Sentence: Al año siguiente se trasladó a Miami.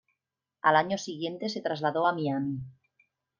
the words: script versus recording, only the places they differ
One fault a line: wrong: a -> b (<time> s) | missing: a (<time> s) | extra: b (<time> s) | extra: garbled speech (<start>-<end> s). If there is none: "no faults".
no faults